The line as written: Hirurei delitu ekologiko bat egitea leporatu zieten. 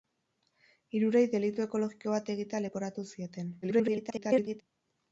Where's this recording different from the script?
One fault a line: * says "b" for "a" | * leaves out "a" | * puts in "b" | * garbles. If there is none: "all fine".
* garbles